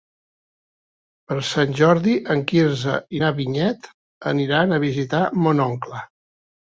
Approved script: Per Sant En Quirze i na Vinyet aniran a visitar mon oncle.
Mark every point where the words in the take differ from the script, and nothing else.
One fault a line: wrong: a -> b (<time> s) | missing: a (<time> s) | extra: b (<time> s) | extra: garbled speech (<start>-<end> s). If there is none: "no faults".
extra: Jordi (1.8 s)